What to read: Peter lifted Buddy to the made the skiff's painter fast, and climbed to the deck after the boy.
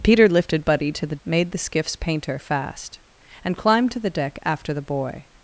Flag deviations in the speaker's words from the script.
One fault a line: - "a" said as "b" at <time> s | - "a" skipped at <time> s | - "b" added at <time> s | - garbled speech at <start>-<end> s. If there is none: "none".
none